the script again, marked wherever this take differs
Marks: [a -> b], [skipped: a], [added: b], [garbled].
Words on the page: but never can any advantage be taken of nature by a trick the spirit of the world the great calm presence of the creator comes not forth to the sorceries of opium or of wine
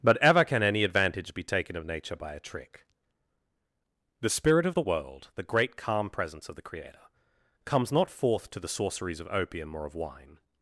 but [never -> ever] can any advantage be taken of nature by a trick the spirit of the world the great calm presence of the creator comes not forth to the sorceries of opium or of wine